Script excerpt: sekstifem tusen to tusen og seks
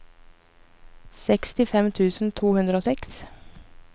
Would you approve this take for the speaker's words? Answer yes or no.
no